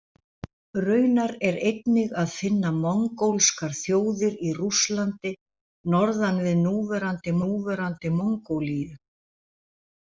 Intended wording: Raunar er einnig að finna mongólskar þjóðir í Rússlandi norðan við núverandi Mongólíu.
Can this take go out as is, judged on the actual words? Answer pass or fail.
fail